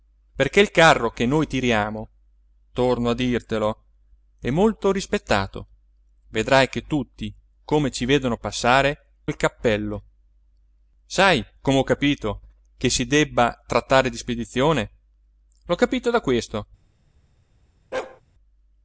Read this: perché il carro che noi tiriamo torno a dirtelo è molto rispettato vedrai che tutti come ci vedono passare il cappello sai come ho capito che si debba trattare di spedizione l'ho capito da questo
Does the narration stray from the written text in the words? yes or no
no